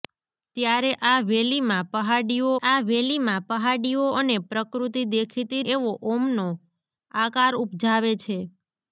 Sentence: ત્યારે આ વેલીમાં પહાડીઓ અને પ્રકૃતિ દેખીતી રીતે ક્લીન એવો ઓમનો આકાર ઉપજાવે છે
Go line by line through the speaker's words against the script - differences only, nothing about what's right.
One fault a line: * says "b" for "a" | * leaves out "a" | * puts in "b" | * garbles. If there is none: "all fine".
* puts in "આ વેલીમાં પહાડીઓ"
* leaves out "રીતે ક્લીન"